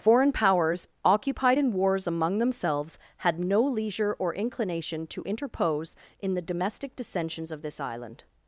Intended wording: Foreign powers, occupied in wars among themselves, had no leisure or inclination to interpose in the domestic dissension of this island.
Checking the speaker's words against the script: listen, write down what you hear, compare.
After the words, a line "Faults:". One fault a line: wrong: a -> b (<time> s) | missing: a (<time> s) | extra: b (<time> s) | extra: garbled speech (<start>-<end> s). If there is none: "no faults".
Foreign powers, occupied in wars among themselves, had no leisure or inclination to interpose in the domestic dissensions of this island.
Faults:
wrong: dissension -> dissensions (6.9 s)